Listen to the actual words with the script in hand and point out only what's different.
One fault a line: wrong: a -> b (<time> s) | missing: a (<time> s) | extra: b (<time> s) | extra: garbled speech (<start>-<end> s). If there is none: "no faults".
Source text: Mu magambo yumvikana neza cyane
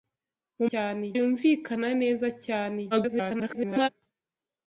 wrong: magambo -> cyane (0.7 s)
extra: garbled speech (2.9-3.9 s)